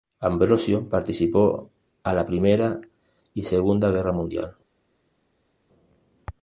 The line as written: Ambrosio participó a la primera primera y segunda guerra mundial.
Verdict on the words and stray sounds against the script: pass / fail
fail